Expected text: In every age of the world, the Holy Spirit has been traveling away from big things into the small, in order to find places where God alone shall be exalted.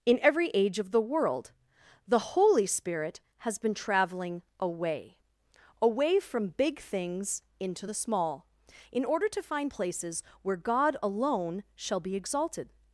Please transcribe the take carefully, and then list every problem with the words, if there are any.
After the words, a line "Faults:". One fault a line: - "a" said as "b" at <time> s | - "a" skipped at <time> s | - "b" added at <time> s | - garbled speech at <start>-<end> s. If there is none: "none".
In every age of the world, the Holy Spirit has been traveling away away from big things into the small, in order to find places where God alone shall be exalted.
Faults:
- "away" added at 5.8 s